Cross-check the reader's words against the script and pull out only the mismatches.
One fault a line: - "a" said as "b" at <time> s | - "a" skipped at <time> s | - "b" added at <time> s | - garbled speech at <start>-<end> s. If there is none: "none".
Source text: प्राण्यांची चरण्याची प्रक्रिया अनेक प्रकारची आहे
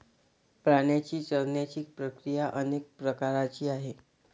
none